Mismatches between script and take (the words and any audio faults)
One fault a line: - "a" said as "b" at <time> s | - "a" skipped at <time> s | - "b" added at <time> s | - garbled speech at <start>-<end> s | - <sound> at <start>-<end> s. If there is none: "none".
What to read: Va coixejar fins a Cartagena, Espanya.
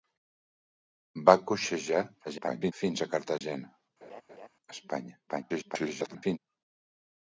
- garbled speech at 2.2-2.7 s
- dropout at 3.4-3.4 s
- laugh at 4.0-4.5 s
- garbled speech at 5.3-6.4 s